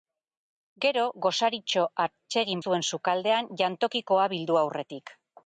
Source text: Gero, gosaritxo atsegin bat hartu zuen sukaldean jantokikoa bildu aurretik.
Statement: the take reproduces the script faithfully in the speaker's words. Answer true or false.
false